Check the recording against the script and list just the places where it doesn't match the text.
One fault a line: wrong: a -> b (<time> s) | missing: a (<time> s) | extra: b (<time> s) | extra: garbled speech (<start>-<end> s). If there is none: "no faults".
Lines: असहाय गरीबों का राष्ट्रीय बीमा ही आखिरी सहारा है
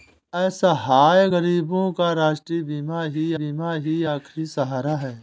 extra: बीमा ही (3.3 s)